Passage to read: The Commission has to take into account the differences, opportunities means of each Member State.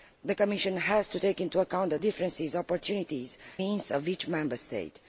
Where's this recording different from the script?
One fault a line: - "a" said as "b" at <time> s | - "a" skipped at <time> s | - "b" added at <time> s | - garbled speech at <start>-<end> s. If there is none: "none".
none